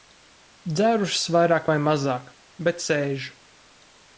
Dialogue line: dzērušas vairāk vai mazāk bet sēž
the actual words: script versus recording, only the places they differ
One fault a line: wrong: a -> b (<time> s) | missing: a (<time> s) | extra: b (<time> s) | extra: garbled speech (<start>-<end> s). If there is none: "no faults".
no faults